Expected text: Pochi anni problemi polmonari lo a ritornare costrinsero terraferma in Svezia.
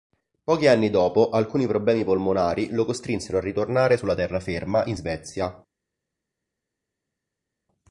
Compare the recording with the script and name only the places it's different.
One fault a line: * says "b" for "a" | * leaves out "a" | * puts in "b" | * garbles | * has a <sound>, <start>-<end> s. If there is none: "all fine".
* puts in "dopo alcuni"
* puts in "costrinsero"
* says "sulla" for "costrinsero"